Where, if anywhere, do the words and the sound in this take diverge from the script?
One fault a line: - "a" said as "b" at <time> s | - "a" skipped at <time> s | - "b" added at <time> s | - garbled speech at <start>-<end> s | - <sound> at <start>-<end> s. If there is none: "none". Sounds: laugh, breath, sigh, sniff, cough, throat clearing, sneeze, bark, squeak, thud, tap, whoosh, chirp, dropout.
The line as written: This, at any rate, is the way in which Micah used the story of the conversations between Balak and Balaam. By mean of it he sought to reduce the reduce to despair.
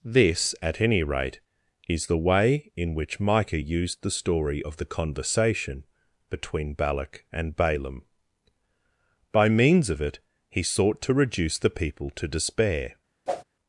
- "conversations" said as "conversation" at 4.8 s
- "mean" said as "means" at 9.5 s
- "reduce" said as "people" at 11.7 s
- whoosh at 13.3-13.4 s